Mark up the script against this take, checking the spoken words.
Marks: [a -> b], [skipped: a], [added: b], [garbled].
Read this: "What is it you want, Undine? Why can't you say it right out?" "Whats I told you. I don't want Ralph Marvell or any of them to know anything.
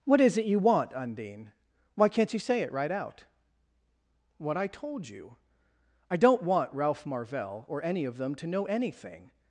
"What is it you want, Undine? Why can't you say it right out?" ["Whats -> What] I told you. I don't want Ralph Marvell or any of them to know anything.